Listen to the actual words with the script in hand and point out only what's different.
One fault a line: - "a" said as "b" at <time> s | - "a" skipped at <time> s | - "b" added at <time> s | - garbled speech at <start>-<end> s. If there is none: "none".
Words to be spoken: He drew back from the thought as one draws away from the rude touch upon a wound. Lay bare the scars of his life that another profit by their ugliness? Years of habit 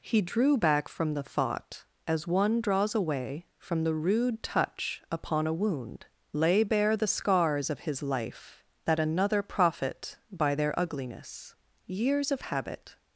none